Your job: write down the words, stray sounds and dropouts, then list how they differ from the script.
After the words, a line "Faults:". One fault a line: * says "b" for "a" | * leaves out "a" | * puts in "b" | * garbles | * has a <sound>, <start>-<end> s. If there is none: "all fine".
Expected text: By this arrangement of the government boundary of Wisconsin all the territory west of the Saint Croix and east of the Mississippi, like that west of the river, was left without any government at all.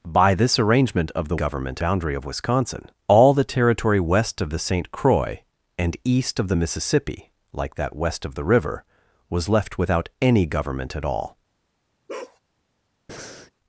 By this arrangement of the government boundary of Wisconsin all the territory west of the Saint Croix and east of the Mississippi, like that west of the river, was left without any government at all.
Faults:
* has a bark, 12.1-12.4 s
* has a breath, 13.1-13.5 s